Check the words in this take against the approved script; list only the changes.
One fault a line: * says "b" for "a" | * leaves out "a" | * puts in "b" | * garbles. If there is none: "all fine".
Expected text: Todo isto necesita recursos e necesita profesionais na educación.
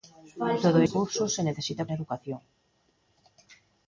* leaves out "isto necesita"
* leaves out "profesionais"